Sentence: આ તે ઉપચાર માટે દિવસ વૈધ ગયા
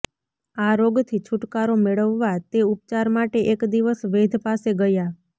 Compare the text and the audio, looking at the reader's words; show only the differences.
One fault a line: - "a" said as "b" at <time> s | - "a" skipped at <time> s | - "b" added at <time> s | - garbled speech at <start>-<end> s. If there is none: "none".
- "રોગથી છુટકારો મેળવવા" added at 0.8 s
- "એક" added at 3.5 s
- "પાસે" added at 4.4 s